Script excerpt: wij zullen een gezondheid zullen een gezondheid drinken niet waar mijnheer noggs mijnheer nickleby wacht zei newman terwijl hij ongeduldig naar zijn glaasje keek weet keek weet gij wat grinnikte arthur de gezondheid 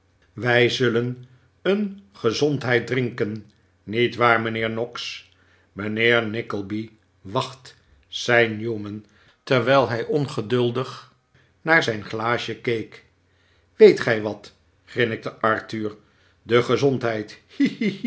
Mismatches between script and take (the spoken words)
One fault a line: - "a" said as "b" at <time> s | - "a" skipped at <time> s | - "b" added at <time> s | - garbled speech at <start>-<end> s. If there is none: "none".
- "zullen een gezondheid" skipped at 2.9 s
- "keek weet" skipped at 14.0 s